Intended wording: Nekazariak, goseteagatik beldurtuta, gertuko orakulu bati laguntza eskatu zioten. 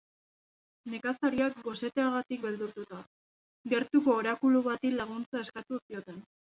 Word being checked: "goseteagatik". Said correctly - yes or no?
yes